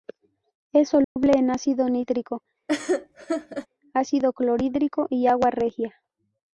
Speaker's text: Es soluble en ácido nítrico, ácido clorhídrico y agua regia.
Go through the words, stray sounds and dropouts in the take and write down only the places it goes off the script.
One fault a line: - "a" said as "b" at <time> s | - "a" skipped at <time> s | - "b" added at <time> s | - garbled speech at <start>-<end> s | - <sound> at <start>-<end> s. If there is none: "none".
- dropout at 1.0-1.2 s
- laugh at 2.7-3.7 s